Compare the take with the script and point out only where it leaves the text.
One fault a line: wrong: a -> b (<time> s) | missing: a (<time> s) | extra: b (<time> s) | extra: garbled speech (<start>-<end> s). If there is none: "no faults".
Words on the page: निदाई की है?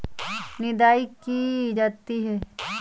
extra: जाती (1.7 s)